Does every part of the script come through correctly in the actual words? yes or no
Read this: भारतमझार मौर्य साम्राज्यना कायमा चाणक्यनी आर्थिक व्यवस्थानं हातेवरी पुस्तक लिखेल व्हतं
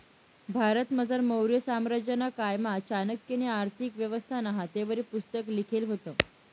yes